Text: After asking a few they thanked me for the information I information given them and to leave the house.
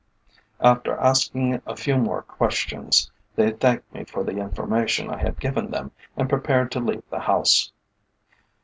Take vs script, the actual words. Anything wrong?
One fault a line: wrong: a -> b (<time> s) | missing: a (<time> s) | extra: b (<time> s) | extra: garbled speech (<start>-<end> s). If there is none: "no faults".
extra: more questions (1.9 s)
wrong: information -> had (5.2 s)
extra: prepared (6.3 s)